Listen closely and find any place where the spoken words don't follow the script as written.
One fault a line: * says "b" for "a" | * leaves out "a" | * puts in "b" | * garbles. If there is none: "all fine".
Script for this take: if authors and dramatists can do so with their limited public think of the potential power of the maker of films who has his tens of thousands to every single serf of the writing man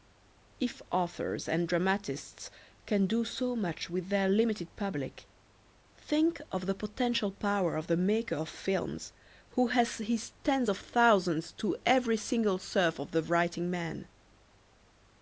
* puts in "much"